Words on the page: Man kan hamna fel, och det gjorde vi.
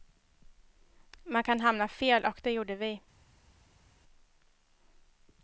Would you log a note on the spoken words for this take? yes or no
no